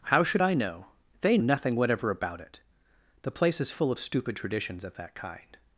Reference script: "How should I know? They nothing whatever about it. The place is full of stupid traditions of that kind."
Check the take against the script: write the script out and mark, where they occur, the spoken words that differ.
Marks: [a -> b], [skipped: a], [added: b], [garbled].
"How should I know? They nothing whatever about it. The place is full of stupid traditions of that kind."